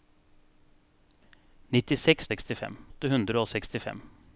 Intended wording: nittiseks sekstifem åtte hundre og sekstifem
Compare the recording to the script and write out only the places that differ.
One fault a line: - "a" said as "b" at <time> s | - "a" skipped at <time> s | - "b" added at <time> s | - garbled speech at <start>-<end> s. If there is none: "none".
none